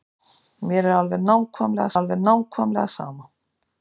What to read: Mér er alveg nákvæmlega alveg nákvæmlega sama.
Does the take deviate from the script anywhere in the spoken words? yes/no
no